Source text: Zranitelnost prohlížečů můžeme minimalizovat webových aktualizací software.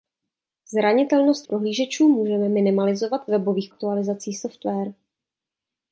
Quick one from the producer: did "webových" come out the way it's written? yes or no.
yes